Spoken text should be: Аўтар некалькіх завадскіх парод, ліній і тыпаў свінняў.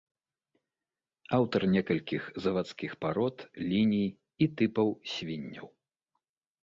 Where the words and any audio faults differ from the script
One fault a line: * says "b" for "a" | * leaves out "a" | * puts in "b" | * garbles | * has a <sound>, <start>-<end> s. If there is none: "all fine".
all fine